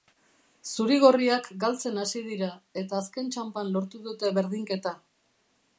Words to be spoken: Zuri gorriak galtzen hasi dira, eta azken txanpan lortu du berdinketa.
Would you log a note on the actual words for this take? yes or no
yes